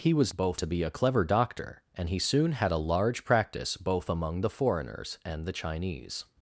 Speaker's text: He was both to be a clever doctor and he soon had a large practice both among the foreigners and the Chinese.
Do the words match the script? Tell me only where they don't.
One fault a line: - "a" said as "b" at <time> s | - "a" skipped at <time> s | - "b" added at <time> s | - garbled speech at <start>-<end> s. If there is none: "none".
none